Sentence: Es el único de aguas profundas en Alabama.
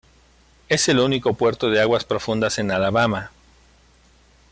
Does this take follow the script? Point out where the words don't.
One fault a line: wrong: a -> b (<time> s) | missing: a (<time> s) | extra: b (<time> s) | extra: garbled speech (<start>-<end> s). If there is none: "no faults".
extra: puerto (1.4 s)